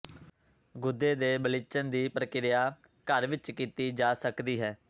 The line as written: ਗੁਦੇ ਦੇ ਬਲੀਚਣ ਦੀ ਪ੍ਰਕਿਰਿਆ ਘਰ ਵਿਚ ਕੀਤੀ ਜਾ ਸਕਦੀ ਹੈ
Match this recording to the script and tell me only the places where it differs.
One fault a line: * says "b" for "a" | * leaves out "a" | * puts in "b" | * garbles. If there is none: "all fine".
all fine